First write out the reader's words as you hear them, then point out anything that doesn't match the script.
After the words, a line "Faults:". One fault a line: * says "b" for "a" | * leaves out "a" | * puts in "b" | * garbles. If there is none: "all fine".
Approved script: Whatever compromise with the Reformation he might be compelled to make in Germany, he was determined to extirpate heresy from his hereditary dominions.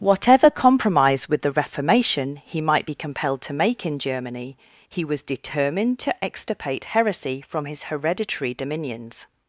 Whatever compromise with the Reformation he might be compelled to make in Germany, he was determined to extirpate heresy from his hereditary dominions.
Faults:
all fine